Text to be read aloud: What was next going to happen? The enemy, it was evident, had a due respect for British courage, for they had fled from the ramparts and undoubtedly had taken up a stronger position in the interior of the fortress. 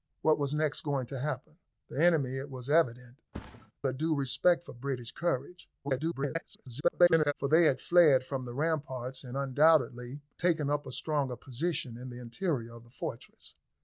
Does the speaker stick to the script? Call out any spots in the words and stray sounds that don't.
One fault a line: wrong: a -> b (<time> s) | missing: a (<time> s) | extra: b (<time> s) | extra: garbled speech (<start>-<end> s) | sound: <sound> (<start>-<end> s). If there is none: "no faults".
missing: had (3.2 s)
sound: thud (3.3-3.7 s)
extra: garbled speech (5.8-7.3 s)
missing: had (10.2 s)